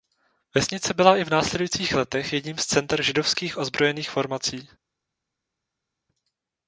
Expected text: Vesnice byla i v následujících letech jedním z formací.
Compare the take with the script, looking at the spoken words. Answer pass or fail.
fail